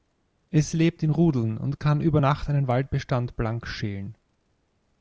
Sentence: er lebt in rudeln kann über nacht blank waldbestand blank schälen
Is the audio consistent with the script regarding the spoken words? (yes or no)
no